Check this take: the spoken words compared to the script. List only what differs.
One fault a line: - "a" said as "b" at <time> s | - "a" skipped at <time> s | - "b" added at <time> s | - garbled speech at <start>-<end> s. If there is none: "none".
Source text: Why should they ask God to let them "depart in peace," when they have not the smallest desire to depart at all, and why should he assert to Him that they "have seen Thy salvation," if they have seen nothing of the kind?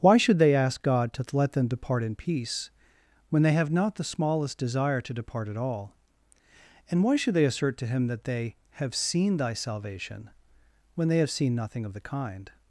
- "he" said as "they" at 7.3 s
- "if" said as "when" at 10.9 s